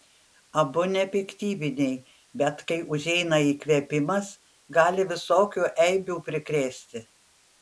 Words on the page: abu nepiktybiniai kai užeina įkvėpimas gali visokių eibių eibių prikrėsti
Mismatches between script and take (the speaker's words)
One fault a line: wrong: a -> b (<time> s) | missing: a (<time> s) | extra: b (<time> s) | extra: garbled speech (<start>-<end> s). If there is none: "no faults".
extra: bet (2.4 s)
missing: eibių (6.2 s)